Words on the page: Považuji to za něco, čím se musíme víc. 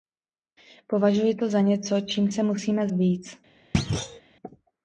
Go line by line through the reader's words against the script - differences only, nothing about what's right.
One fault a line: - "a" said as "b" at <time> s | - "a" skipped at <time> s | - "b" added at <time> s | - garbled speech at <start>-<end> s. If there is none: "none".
none